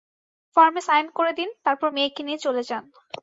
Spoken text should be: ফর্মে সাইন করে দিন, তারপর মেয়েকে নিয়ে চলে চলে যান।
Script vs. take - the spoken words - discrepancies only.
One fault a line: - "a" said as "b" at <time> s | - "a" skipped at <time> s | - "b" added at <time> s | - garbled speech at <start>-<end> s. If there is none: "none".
- "চলে" skipped at 2.6 s